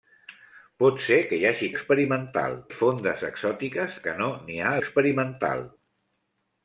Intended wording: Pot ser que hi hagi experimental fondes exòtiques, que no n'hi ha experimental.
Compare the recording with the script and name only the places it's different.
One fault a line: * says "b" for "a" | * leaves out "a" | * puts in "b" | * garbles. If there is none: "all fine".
all fine